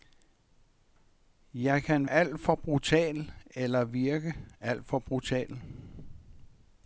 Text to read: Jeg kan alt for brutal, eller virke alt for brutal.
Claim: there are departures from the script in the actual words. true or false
false